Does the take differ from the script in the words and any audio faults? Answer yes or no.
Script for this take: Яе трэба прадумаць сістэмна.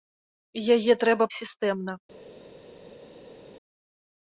yes